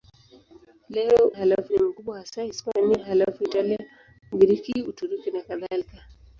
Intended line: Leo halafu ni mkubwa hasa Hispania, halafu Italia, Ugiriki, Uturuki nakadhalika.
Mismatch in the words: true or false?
false